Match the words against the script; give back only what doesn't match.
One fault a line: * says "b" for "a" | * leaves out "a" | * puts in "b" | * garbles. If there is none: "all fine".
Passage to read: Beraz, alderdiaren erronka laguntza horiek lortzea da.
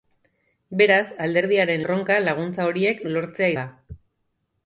all fine